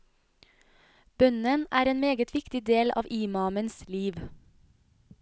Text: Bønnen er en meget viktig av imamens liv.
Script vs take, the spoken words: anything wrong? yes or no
yes